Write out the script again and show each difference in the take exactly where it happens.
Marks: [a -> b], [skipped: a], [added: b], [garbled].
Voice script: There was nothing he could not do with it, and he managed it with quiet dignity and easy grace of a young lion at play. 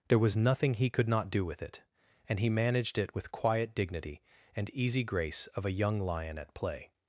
There was nothing he could not do with it, and he managed it with quiet dignity and easy grace of a young lion at play.